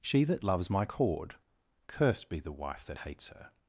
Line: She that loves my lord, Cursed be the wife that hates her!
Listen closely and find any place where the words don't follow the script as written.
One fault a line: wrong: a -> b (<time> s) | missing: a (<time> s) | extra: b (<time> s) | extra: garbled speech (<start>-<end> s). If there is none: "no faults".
wrong: lord -> cord (0.8 s)